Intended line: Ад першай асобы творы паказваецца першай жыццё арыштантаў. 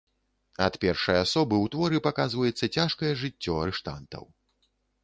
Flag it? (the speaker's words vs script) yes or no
yes